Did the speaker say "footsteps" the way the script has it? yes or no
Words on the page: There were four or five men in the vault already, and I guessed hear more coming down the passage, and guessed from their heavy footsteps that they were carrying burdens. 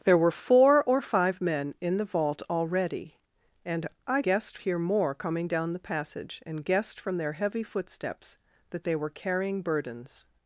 yes